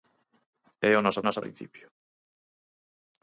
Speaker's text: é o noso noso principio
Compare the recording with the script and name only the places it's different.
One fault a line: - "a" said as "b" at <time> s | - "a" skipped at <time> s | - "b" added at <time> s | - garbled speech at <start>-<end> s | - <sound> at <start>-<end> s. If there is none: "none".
none